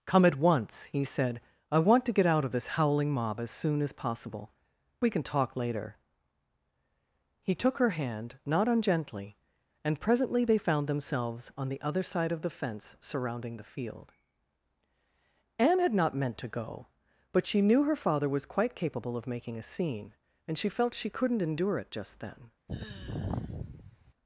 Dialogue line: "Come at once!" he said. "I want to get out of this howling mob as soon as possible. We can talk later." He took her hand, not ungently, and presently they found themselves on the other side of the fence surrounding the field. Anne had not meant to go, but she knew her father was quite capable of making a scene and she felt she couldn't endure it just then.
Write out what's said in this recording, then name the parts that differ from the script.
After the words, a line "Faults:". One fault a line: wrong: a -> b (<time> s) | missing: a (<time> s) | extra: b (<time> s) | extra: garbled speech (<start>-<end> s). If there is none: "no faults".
"Come at once!" he said. "I want to get out of this howling mob as soon as possible. We can talk later." He took her hand, not ungently, and presently they found themselves on the other side of the fence surrounding the field. Anne had not meant to go, but she knew her father was quite capable of making a scene and she felt she couldn't endure it just then.
Faults:
no faults